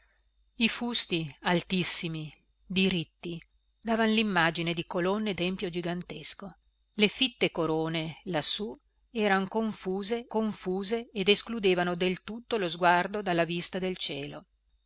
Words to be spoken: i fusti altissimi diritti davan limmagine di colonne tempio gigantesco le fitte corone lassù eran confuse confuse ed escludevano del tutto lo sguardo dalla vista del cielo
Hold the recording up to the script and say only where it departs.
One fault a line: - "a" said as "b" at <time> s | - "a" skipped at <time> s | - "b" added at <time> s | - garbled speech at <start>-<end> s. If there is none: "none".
none